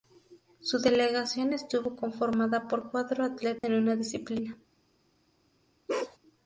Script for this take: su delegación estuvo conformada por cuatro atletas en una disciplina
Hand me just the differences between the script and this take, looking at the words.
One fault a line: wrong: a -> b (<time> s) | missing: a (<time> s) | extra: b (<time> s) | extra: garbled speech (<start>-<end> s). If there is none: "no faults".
no faults